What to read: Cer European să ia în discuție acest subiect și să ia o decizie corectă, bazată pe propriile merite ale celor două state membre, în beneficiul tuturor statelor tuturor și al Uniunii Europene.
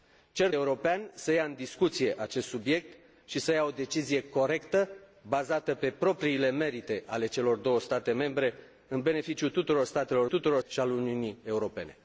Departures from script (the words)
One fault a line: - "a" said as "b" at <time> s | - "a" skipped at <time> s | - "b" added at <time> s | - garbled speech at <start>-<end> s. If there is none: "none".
none